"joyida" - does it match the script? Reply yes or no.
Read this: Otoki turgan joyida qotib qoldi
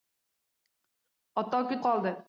no